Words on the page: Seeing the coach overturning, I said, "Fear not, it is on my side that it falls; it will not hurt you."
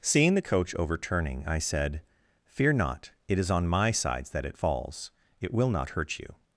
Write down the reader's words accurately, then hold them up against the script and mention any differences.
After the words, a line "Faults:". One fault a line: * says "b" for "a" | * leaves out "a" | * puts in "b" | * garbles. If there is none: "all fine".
Seeing the coach overturning, I said, "Fear not, it is on my sides that it falls; it will not hurt you."
Faults:
* says "sides" for "side"